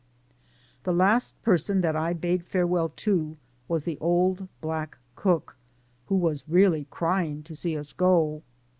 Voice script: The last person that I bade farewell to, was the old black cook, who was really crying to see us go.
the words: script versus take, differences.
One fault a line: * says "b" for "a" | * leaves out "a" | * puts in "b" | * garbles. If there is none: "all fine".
all fine